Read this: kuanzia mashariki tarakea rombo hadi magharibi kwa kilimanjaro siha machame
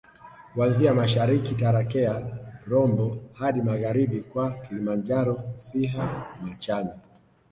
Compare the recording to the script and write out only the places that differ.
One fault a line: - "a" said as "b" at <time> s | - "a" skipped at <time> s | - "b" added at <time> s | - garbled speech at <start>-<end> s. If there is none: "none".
none